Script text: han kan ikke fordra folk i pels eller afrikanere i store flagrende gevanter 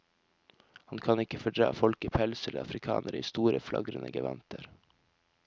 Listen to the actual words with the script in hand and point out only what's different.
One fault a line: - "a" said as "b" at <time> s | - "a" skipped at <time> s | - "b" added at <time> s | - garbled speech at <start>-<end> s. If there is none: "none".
none